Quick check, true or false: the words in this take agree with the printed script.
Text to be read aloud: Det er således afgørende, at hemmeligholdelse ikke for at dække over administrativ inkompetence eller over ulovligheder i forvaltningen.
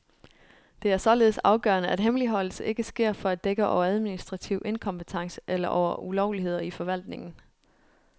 false